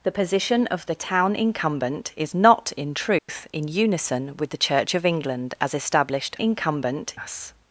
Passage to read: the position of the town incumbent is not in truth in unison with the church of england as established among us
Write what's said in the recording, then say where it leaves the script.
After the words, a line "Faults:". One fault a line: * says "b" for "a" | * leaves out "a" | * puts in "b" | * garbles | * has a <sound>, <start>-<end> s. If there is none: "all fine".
the position of the town incumbent is not in truth in unison with the church of england as established incumbent us
Faults:
* has a dropout, 3.2-3.3 s
* says "incumbent" for "among"